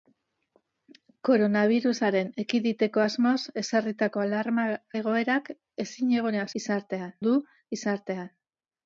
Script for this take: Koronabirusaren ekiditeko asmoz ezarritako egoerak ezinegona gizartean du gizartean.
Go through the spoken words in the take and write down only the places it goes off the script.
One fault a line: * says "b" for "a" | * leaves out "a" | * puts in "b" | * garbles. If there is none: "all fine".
all fine